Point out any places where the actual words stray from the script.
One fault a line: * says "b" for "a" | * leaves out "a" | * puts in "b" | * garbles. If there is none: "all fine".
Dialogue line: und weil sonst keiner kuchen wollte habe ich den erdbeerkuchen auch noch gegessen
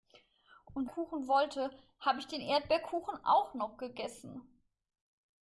* leaves out "weil sonst keiner"